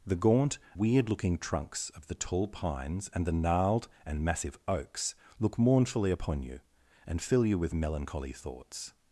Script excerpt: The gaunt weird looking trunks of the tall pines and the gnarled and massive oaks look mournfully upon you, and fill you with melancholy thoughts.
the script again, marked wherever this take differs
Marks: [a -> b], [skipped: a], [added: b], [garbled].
The gaunt weird looking trunks of the tall pines and the gnarled and massive oaks look mournfully upon you, and fill you with melancholy thoughts.